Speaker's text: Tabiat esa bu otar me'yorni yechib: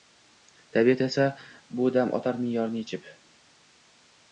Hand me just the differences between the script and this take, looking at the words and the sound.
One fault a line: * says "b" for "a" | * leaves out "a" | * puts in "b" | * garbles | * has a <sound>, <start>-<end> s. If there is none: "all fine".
* puts in "dam"